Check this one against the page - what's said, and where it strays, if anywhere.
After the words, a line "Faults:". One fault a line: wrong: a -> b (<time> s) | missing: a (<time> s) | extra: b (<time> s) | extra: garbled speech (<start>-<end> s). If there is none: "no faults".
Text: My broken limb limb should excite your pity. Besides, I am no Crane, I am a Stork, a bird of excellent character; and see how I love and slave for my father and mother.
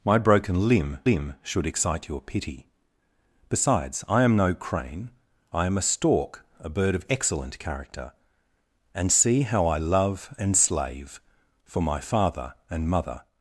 My broken limb limb should excite your pity. Besides, I am no Crane, I am a Stork, a bird of excellent character; and see how I love and slave for my father and mother.
Faults:
no faults